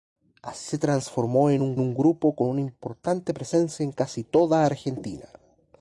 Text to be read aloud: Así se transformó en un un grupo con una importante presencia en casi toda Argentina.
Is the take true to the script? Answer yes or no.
yes